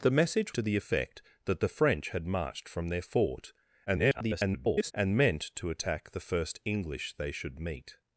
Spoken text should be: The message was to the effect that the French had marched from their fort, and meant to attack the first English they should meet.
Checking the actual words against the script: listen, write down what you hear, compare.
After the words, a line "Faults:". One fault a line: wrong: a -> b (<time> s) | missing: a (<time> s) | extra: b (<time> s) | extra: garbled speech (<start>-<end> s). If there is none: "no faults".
The message to the effect that the French had marched from their fort, [garbled] and meant to attack the first English they should meet.
Faults:
missing: was (0.5 s)
extra: garbled speech (3.9-4.9 s)